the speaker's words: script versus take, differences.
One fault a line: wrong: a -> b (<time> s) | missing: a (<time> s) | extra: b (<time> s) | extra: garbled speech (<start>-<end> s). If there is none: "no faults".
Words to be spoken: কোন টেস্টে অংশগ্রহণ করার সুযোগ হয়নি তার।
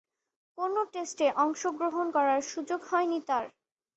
no faults